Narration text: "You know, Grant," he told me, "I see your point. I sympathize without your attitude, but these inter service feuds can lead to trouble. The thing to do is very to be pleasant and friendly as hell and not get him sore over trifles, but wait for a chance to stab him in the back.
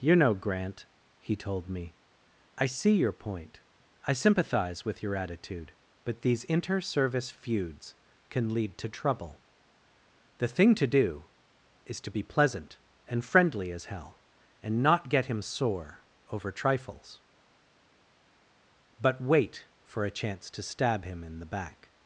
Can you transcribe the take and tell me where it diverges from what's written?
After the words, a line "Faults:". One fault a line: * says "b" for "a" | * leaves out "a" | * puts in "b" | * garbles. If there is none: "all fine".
"You know, Grant," he told me, "I see your point. I sympathize with your attitude, but these inter service feuds can lead to trouble. The thing to do is to be pleasant and friendly as hell and not get him sore over trifles, but wait for a chance to stab him in the back.
Faults:
* says "with" for "without"
* leaves out "very"